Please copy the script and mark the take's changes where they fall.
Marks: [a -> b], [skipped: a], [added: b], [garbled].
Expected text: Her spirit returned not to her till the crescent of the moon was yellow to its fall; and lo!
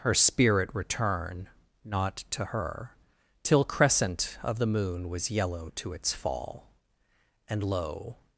Her spirit [returned -> return] not to her till [skipped: the] crescent of the moon was yellow to its fall; and lo!